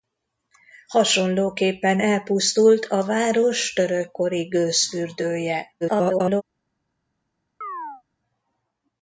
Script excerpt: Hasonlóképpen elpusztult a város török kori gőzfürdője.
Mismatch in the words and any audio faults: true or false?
true